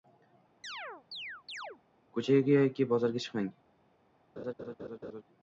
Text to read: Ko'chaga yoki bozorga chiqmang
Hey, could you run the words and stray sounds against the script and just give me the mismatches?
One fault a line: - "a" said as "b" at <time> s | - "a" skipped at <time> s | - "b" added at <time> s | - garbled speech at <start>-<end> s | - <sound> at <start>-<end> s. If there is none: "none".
- chirp at 0.6-1.8 s
- laugh at 4.4-5.2 s